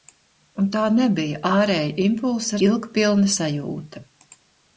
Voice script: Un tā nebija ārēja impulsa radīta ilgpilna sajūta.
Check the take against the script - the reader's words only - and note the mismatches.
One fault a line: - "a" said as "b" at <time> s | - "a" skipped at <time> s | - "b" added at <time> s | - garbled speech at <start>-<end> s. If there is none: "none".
- "radīta" skipped at 2.6 s